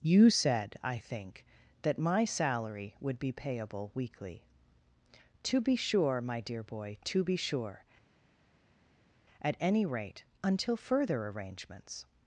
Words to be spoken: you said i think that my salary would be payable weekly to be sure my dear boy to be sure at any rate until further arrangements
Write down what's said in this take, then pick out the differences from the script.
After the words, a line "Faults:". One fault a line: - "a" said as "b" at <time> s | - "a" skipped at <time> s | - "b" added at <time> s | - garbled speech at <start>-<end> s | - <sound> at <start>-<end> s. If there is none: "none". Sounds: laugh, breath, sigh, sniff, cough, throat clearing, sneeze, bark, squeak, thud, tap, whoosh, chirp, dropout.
you said i think that my salary would be payable weekly to be sure my dear boy to be sure at any rate until further arrangements
Faults:
none